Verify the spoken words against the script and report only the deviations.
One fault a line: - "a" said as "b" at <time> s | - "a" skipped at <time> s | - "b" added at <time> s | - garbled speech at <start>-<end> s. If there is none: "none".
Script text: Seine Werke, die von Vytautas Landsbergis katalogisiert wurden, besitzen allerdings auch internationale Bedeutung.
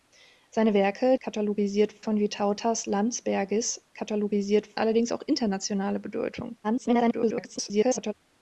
- "die" said as "katalogisiert" at 1.2 s
- "wurden besitzen" skipped at 4.8 s
- garbled speech at 6.6-8.1 s